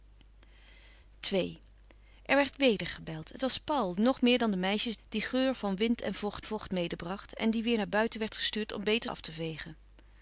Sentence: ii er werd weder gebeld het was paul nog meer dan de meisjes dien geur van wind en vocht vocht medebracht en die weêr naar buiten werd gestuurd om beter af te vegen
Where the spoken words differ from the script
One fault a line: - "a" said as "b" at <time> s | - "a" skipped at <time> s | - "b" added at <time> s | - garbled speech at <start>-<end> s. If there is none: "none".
none